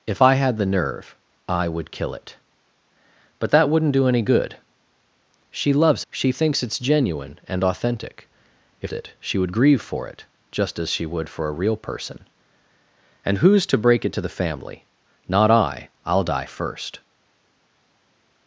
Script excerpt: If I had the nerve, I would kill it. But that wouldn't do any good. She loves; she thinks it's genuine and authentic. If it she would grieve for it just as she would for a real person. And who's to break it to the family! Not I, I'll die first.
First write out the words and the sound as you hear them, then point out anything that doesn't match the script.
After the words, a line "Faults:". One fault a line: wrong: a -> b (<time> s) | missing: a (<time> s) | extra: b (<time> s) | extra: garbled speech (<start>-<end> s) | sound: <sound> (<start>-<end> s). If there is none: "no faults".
If I had the nerve, I would kill it. But that wouldn't do any good. She loves; she thinks it's genuine and authentic. If it she would grieve for it just as she would for a real person. And who's to break it to the family! Not I, I'll die first.
Faults:
no faults